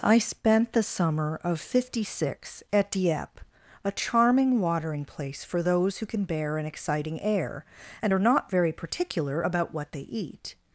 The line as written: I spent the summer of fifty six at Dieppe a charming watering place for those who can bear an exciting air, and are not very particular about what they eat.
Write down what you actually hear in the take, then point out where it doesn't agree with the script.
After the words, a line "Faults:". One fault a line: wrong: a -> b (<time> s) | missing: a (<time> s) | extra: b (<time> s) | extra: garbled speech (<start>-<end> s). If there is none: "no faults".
I spent the summer of fifty six at Dieppe a charming watering place for those who can bear an exciting air, and are not very particular about what they eat.
Faults:
no faults